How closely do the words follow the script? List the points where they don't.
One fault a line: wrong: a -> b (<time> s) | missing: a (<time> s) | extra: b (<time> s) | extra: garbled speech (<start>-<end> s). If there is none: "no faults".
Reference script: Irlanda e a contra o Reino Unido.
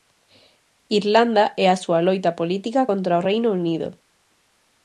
extra: súa loita política (1.8 s)